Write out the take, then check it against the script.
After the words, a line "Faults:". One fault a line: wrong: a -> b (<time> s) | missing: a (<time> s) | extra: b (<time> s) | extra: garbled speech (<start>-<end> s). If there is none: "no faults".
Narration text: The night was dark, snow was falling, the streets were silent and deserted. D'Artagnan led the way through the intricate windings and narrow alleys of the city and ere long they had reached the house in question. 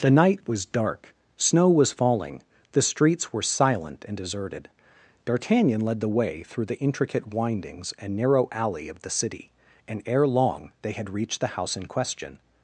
The night was dark, snow was falling, the streets were silent and deserted. D'Artagnan led the way through the intricate windings and narrow alley of the city and ere long they had reached the house in question.
Faults:
wrong: alleys -> alley (8.5 s)